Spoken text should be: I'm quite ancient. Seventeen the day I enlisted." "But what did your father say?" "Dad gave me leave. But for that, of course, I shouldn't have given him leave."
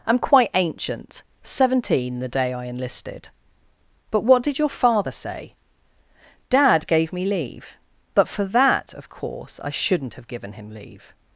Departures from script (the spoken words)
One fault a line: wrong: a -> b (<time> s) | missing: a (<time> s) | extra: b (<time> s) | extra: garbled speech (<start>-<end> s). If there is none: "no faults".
no faults